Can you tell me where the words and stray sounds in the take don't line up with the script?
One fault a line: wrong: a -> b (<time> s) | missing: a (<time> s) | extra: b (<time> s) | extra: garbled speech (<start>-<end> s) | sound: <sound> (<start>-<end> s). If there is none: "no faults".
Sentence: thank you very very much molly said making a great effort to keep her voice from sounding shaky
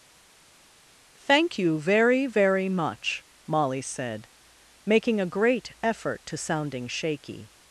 missing: keep her voice from (6.4 s)